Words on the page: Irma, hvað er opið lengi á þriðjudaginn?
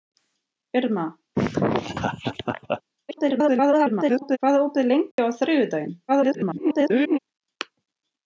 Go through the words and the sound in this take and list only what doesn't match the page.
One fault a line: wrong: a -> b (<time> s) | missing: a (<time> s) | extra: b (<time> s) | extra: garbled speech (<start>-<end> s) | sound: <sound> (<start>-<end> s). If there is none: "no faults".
sound: laugh (1.3-2.8 s)
extra: garbled speech (3.1-4.4 s)
sound: dropout (5.1-5.2 s)
extra: garbled speech (6.1-7.2 s)